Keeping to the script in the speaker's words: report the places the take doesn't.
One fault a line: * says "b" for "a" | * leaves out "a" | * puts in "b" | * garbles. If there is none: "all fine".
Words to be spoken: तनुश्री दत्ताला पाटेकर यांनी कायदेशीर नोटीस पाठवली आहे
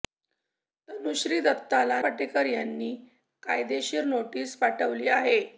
all fine